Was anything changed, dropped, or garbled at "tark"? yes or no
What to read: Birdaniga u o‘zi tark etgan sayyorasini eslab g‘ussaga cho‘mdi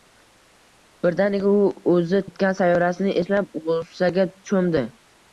yes